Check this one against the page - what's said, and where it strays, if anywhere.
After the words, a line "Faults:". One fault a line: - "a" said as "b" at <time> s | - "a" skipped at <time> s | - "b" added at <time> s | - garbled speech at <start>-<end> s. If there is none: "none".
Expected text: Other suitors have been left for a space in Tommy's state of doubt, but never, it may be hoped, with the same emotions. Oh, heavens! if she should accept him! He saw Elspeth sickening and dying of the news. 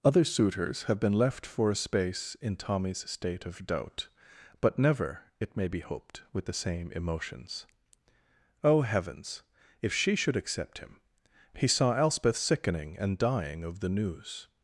Other suitors have been left for a space in Tommy's state of doubt, but never, it may be hoped, with the same emotions. Oh, heavens! if she should accept him! He saw Elspeth sickening and dying of the news.
Faults:
none